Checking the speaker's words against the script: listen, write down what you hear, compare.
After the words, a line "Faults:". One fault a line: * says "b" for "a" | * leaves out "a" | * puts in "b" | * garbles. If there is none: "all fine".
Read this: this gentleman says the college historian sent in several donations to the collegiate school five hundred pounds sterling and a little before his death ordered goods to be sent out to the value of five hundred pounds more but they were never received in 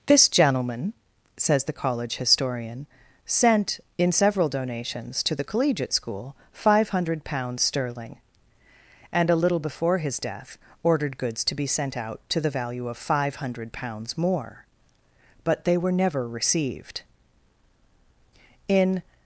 this gentleman says the college historian sent in several donations to the collegiate school five hundred pounds sterling and a little before his death ordered goods to be sent out to the value of five hundred pounds more but they were never received in
Faults:
all fine